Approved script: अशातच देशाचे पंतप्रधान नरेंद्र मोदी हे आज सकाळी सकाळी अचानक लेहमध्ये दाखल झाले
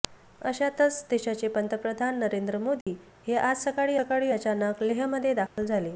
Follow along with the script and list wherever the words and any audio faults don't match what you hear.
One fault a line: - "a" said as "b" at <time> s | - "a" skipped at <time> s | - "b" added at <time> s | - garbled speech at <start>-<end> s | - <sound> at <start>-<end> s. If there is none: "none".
- dropout at 2.8-2.9 s
- dropout at 5.5-5.6 s